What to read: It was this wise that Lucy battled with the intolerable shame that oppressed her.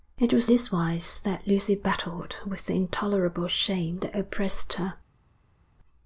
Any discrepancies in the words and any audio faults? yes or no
no